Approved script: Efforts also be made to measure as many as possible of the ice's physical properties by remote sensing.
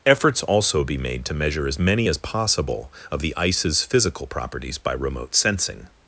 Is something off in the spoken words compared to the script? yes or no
no